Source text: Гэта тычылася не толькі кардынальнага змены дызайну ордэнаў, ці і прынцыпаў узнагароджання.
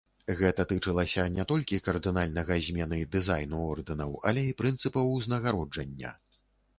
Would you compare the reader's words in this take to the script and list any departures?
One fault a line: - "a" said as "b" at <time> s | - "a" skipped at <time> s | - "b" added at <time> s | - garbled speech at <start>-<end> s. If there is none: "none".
- "ці" said as "але" at 4.3 s